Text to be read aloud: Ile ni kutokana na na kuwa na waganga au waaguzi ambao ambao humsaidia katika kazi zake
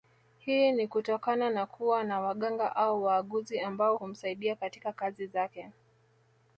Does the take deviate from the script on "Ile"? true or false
true